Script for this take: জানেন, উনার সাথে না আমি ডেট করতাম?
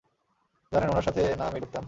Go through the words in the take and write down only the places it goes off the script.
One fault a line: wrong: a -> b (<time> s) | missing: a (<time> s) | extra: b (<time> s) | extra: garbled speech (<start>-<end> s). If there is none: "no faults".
missing: ডেট (1.6 s)